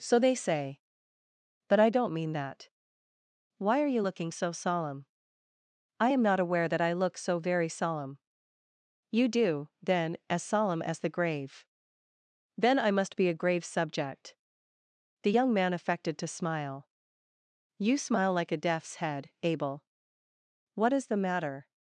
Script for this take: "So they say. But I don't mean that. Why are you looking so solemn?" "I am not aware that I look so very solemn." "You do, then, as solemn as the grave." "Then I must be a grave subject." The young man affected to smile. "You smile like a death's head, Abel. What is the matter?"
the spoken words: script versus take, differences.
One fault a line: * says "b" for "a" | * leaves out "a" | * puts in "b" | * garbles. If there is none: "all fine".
all fine